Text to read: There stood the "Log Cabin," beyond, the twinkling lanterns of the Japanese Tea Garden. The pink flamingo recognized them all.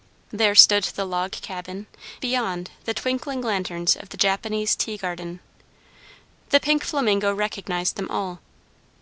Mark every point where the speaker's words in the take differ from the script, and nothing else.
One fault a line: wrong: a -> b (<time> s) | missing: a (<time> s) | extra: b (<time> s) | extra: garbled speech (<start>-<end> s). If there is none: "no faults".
no faults